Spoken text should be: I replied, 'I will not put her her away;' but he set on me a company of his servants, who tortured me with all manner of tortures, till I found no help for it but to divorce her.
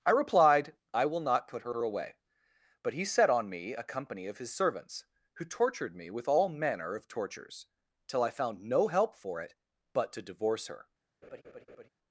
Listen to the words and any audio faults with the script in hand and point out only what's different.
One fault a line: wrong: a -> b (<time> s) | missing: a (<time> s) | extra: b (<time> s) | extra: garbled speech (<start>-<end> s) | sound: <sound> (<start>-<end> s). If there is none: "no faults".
sound: laugh (11.2-11.9 s)